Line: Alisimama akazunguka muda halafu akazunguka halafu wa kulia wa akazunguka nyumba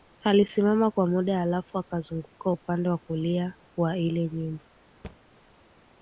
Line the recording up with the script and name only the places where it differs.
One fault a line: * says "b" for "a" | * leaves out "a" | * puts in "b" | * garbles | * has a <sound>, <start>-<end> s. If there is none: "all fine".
* says "kwa" for "akazunguka"
* says "upande" for "halafu"
* says "ile" for "akazunguka"
* has a thud, 5.0-5.2 s